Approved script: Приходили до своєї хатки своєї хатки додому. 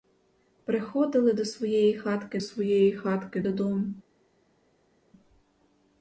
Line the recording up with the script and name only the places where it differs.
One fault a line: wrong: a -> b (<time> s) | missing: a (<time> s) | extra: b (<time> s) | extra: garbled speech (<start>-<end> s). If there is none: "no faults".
no faults